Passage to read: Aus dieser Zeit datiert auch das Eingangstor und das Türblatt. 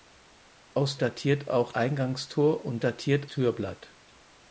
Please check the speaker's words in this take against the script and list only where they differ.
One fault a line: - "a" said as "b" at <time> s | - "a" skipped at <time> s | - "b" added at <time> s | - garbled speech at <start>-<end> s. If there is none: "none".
- "dieser Zeit" skipped at 1.0 s
- "das" skipped at 1.7 s
- "das" said as "datiert" at 2.8 s